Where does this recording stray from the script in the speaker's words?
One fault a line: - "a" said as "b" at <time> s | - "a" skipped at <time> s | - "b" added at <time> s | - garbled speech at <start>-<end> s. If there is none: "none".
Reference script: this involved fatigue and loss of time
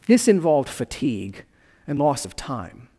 none